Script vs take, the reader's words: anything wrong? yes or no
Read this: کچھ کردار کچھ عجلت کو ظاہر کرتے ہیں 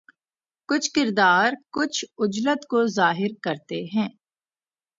no